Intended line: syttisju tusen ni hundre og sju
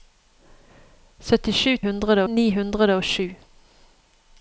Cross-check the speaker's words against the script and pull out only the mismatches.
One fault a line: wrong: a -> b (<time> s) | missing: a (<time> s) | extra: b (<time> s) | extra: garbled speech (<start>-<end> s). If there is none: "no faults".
wrong: tusen -> hundre (1.8 s)